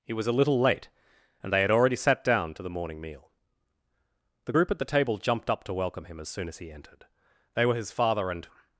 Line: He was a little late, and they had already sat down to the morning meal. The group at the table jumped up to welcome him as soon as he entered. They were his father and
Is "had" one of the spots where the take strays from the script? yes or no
no